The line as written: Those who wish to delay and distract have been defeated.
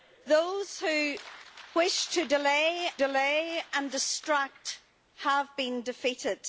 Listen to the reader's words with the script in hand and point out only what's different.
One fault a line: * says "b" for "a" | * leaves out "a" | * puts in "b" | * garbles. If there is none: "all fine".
* puts in "delay"